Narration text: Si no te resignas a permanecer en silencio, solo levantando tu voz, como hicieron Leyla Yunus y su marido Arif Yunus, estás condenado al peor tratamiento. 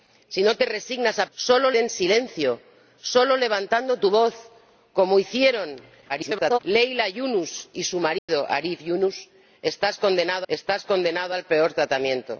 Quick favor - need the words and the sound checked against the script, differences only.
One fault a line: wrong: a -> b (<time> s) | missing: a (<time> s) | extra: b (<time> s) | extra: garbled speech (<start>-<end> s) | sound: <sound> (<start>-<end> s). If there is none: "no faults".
wrong: permanecer -> solo (1.3 s)
extra: garbled speech (6.1-6.6 s)
sound: dropout (8.2-8.3 s)
extra: estás condenado (10.5 s)